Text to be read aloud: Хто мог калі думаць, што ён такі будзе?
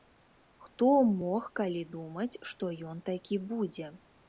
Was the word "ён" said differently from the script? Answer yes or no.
no